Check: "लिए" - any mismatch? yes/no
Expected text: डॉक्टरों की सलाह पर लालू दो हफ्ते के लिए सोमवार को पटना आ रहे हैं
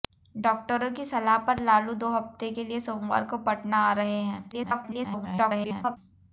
no